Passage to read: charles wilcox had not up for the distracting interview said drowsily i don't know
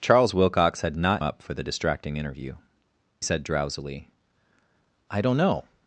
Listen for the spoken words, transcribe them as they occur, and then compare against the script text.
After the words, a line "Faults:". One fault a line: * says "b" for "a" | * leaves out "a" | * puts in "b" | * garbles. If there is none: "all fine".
charles wilcox had not up for the distracting interview said drowsily i don't know
Faults:
all fine